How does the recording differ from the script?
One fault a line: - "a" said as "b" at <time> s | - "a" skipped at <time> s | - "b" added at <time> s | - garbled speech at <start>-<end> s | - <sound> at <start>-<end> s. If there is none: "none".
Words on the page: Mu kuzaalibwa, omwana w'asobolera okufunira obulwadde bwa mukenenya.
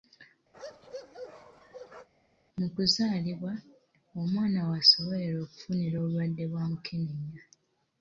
- bark at 0.5-2.1 s